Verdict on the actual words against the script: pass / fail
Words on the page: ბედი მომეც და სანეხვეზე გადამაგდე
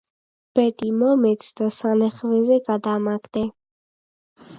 pass